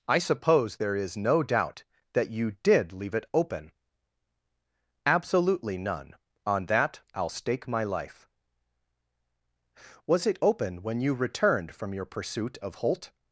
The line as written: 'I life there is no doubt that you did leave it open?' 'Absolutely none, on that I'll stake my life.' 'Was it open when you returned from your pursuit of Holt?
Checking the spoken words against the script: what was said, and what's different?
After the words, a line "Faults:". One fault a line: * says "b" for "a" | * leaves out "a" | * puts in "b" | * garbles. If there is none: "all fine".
'I suppose there is no doubt that you did leave it open?' 'Absolutely none, on that I'll stake my life.' 'Was it open when you returned from your pursuit of Holt?
Faults:
* says "suppose" for "life"